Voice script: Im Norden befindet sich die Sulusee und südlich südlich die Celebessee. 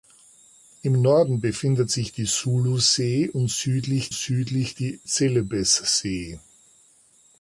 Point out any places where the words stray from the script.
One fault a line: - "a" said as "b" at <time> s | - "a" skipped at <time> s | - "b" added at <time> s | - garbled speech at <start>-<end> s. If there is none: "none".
none